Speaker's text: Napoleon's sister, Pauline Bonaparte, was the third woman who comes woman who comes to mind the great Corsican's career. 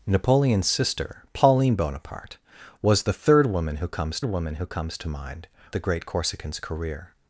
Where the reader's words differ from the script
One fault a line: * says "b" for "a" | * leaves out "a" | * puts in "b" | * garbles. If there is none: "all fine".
all fine